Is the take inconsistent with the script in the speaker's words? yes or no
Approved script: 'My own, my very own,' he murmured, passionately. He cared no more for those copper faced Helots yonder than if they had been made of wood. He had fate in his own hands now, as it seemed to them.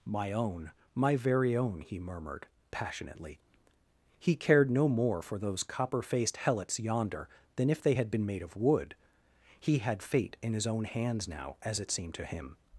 yes